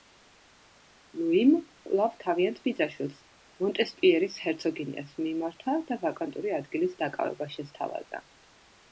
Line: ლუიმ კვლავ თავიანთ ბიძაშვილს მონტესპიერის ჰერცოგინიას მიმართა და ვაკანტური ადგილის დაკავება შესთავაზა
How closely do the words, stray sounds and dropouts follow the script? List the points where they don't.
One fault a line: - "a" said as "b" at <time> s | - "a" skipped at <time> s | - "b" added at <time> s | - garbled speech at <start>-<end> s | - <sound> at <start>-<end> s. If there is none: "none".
none